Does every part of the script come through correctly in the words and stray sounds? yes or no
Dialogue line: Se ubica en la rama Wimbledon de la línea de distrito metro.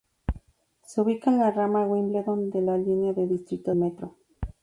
yes